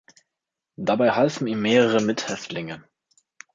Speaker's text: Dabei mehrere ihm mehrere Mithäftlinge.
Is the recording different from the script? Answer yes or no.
yes